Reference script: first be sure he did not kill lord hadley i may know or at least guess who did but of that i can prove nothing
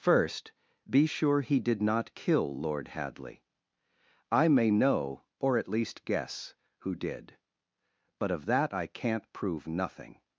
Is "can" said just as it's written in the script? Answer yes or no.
no